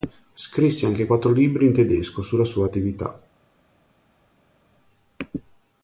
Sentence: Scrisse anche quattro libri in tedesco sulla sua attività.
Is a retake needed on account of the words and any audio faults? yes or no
no